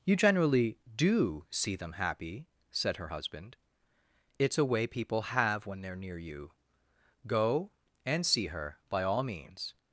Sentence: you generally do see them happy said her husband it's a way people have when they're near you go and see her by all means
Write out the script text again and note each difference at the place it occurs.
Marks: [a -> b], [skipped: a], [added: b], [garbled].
you generally do see them happy said her husband it's a way people have when they're near you go and see her by all means